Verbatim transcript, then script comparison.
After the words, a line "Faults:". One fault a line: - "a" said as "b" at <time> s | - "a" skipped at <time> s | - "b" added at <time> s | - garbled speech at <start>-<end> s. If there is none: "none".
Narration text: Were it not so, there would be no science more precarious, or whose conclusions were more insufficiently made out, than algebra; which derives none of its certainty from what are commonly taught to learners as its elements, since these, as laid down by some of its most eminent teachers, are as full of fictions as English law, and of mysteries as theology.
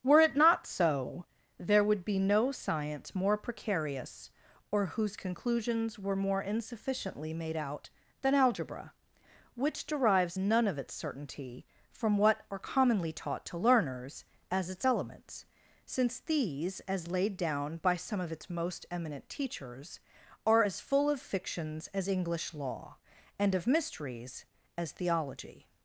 Were it not so, there would be no science more precarious, or whose conclusions were more insufficiently made out, than algebra; which derives none of its certainty from what are commonly taught to learners as its elements, since these, as laid down by some of its most eminent teachers, are as full of fictions as English law, and of mysteries as theology.
Faults:
none